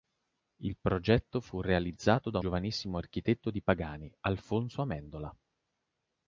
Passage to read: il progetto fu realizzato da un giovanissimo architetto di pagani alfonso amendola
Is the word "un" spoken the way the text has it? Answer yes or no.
no